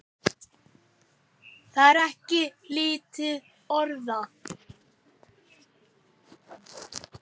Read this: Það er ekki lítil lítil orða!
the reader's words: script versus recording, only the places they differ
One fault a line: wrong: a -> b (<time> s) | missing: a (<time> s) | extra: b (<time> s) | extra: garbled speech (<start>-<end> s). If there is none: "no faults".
missing: lítil (3.3 s)